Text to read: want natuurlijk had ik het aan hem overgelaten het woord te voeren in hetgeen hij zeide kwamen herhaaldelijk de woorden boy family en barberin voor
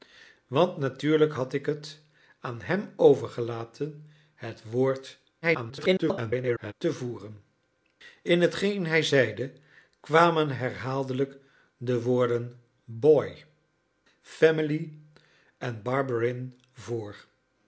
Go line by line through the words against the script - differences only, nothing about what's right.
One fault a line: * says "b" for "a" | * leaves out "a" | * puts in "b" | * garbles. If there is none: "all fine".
* garbles